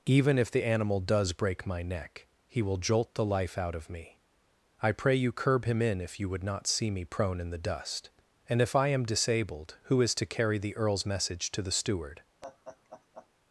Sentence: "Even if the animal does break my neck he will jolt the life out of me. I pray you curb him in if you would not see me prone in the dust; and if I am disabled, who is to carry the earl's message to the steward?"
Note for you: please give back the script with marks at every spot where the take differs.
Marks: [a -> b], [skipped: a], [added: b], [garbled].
"Even if the animal does break my neck he will jolt the life out of me. I pray you curb him in if you would not see me prone in the dust; and if I am disabled, who is to carry the earl's message to the steward?"